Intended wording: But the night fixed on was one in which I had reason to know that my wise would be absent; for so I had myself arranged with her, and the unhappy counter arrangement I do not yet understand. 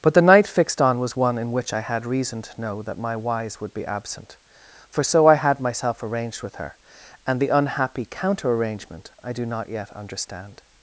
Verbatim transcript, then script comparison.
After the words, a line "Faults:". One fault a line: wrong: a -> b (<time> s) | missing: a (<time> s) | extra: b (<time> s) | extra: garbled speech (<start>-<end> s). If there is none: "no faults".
But the night fixed on was one in which I had reason to know that my wise would be absent; for so I had myself arranged with her, and the unhappy counter arrangement I do not yet understand.
Faults:
no faults